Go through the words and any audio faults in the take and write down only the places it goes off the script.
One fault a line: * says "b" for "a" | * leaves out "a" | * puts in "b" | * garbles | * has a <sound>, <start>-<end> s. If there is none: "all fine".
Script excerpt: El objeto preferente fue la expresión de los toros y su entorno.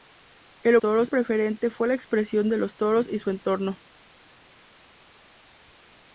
* says "toros" for "objeto"